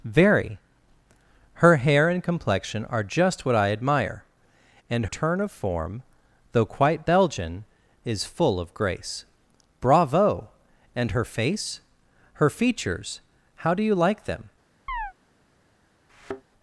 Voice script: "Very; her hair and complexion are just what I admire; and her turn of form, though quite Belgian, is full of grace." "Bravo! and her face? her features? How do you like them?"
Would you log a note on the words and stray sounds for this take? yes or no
yes